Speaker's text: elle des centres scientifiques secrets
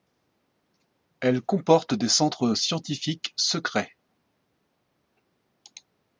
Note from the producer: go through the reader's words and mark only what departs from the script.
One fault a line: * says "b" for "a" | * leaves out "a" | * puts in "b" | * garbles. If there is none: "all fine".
* puts in "comporte"